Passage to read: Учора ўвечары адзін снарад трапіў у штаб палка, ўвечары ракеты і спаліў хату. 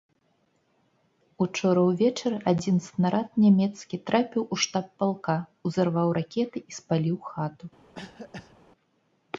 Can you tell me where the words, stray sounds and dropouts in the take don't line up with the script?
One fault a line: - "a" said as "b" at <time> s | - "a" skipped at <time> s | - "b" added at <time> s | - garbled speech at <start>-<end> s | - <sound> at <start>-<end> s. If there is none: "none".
- "нямецкі" added at 3.4 s
- "ўвечары" said as "узарваў" at 5.7 s
- cough at 7.9-8.6 s